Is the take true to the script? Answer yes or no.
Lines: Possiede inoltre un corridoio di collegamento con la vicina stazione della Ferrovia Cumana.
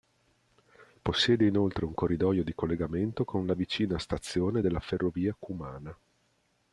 yes